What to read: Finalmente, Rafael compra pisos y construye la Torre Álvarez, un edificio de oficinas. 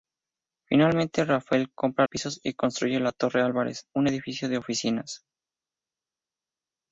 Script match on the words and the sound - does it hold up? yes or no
yes